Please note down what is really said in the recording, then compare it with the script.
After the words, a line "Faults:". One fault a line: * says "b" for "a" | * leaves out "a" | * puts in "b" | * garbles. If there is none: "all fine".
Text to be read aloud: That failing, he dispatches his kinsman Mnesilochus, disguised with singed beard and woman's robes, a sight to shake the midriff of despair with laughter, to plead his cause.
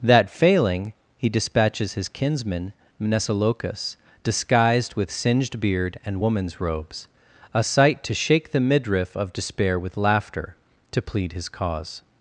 That failing, he dispatches his kinsman Mnesilochus, disguised with singed beard and woman's robes, a sight to shake the midriff of despair with laughter, to plead his cause.
Faults:
all fine